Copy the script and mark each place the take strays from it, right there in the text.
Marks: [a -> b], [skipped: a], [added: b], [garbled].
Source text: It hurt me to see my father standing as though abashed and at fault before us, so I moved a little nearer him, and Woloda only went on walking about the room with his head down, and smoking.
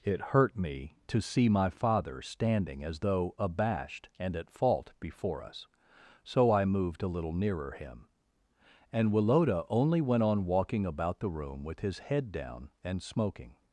It hurt me to see my father standing as though abashed and at fault before us, so I moved a little nearer him, and Woloda only went on walking about the room with his head down, and smoking.